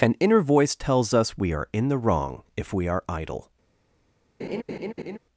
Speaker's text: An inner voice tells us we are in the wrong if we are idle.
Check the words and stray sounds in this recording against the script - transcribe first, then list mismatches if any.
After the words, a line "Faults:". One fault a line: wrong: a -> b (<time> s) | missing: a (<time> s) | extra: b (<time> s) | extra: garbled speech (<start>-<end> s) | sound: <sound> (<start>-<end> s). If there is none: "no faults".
An inner voice tells us we are in the wrong if we are idle.
Faults:
sound: laugh (4.4-5.2 s)